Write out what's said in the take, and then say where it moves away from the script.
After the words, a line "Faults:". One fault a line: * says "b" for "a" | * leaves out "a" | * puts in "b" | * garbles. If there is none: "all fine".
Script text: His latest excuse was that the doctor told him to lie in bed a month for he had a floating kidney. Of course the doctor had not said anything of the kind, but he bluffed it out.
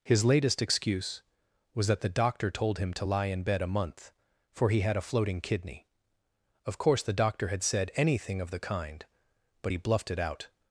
His latest excuse was that the doctor told him to lie in bed a month for he had a floating kidney. Of course the doctor had said anything of the kind, but he bluffed it out.
Faults:
* leaves out "not"